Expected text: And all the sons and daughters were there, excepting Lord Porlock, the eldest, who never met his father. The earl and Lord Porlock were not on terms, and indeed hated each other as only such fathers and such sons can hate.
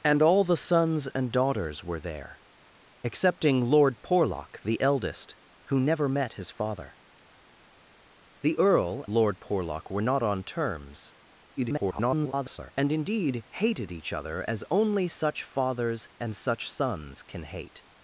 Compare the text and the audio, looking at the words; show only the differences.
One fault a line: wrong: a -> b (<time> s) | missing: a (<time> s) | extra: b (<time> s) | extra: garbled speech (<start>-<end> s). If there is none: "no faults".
missing: and (9.1 s)
extra: garbled speech (11.6-12.7 s)